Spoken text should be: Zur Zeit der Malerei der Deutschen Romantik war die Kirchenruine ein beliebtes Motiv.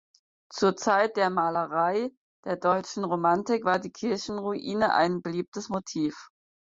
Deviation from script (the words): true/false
false